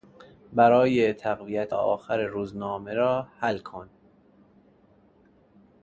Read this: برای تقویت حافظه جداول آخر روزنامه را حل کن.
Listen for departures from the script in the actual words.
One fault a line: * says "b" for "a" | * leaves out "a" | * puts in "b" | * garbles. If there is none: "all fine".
* leaves out "حافظه جداول"